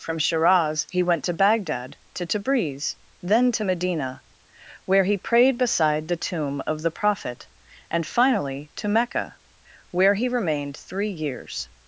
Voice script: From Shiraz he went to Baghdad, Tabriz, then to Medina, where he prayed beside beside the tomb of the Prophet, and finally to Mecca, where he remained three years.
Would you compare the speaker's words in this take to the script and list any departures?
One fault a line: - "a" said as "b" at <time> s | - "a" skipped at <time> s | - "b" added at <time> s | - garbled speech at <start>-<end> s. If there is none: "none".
- "to" added at 2.1 s
- "beside" skipped at 6.1 s